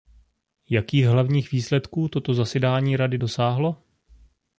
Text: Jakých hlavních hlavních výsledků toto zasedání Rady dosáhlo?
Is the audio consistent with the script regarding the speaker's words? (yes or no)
no